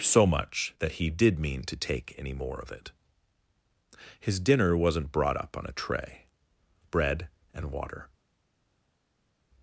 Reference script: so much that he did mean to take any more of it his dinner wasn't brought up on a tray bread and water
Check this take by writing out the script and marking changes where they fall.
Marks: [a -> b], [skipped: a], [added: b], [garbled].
so much that he did mean to take any more of it his dinner wasn't brought up on a tray bread and water